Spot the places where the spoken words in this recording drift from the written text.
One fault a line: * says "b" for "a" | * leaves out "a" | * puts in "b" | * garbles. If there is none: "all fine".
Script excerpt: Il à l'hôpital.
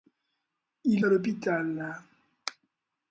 all fine